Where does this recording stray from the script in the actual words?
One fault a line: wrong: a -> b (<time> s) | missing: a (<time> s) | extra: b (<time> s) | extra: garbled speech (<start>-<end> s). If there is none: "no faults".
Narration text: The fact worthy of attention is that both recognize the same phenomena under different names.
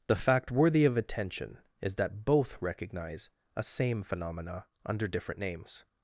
wrong: the -> a (3.6 s)